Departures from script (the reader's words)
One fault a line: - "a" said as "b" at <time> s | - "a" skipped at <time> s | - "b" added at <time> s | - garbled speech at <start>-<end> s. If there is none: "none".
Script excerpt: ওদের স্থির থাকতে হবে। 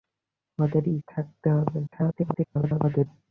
- "স্থির" skipped at 0.8 s
- garbled speech at 1.9-3.1 s